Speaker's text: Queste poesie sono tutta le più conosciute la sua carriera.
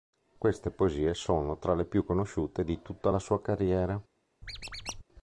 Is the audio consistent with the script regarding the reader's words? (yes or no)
no